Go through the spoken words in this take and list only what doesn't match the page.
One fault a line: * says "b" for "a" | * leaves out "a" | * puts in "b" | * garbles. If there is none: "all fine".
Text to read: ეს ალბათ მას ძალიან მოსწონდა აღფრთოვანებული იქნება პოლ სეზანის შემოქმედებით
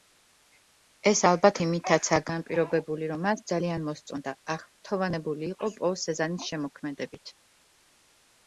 * puts in "იმითაცაა განპირობებული რომ"
* says "იყო" for "იქნება"